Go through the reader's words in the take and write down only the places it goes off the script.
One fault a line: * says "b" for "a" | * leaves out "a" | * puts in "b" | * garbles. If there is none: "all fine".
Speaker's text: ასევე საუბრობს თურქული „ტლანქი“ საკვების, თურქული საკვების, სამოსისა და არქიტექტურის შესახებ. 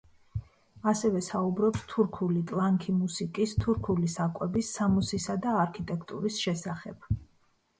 * says "მუსიკის" for "საკვების"